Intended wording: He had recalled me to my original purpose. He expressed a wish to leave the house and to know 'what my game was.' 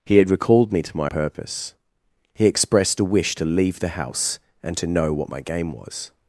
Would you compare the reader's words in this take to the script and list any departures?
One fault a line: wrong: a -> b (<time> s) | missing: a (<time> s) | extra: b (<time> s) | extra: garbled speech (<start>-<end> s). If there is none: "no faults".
missing: original (1.1 s)